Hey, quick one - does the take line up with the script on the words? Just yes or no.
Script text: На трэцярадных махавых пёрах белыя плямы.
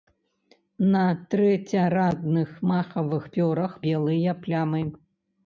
yes